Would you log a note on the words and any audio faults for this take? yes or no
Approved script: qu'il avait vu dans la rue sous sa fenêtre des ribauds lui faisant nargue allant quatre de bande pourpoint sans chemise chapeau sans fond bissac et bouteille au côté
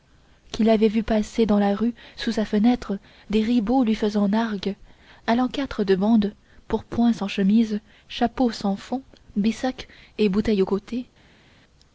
yes